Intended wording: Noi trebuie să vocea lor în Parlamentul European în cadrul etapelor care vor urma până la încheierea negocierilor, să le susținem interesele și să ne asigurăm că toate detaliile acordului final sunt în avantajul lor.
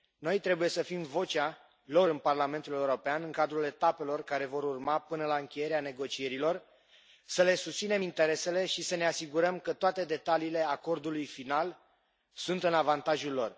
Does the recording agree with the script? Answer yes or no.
no